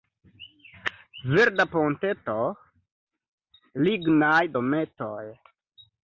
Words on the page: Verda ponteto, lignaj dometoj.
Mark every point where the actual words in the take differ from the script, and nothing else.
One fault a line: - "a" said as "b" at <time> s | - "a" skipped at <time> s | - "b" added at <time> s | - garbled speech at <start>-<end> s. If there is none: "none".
none